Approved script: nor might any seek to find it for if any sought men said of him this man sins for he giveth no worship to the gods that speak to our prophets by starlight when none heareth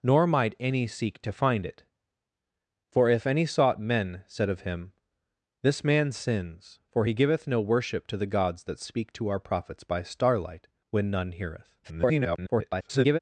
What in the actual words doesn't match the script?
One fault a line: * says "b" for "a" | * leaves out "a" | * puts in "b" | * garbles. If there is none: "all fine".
* garbles